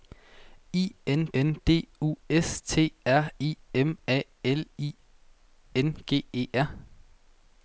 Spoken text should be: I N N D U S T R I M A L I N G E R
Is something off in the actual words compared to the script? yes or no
no